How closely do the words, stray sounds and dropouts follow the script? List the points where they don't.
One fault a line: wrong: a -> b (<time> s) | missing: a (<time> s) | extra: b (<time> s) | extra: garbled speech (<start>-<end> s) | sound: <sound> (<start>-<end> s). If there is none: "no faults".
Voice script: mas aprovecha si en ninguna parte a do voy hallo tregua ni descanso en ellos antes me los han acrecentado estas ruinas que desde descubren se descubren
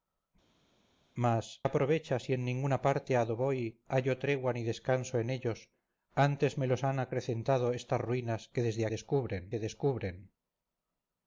no faults